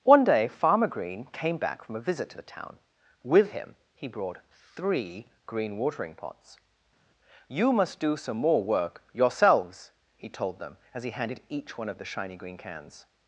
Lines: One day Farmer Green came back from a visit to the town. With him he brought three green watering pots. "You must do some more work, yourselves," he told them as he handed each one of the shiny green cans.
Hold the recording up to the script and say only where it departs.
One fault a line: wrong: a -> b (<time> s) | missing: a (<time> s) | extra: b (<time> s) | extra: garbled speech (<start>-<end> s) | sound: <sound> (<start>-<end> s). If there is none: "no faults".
no faults